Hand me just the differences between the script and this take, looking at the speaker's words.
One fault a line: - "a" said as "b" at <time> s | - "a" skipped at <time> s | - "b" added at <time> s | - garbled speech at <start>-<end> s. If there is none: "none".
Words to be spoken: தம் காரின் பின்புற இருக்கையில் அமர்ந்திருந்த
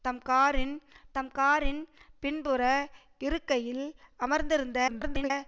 - "தம் காரின்" added at 1.2 s
- garbled speech at 4.9-5.3 s